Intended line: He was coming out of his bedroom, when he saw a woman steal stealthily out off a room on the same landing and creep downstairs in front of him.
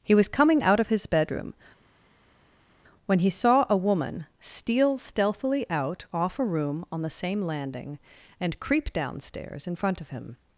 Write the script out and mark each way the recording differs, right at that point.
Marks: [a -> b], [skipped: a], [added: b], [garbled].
He was coming out of his bedroom, when he saw a woman steal stealthily out off a room on the same landing and creep downstairs in front of him.